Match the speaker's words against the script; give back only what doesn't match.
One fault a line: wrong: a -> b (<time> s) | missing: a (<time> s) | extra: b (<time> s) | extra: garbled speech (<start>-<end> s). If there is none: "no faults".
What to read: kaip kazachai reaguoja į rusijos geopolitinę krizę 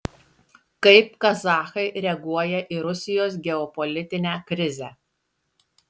no faults